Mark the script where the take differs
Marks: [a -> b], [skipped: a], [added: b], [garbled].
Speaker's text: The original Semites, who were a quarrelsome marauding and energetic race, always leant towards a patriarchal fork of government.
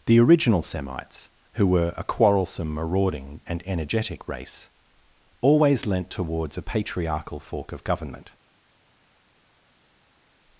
The original Semites, who were a quarrelsome marauding and energetic race, always leant towards a patriarchal fork of government.